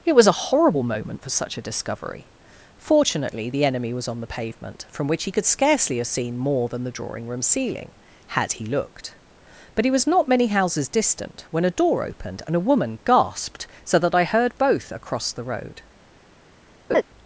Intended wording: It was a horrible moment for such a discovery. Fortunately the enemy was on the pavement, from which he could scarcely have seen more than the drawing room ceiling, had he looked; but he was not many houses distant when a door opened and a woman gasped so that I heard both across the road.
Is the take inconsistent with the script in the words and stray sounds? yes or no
yes